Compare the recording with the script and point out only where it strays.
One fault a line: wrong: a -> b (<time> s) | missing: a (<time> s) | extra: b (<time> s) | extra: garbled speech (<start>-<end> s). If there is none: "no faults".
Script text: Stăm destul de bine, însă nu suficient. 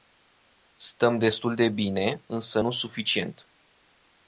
no faults